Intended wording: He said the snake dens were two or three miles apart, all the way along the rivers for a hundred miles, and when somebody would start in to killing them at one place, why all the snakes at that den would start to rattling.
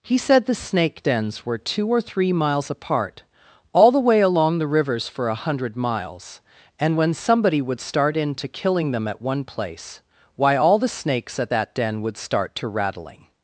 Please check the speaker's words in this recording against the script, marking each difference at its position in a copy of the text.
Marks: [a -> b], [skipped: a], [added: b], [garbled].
He said the snake dens were two or three miles apart, all the way along the rivers for a hundred miles, and when somebody would start in to killing them at one place, why all the snakes at that den would start to rattling.